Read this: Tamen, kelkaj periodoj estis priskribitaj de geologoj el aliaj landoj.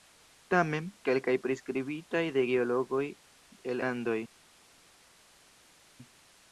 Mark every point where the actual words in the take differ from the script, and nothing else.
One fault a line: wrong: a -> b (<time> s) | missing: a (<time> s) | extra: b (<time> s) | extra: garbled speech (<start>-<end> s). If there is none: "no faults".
missing: periodoj estis (1.4 s)
missing: aliaj (3.8 s)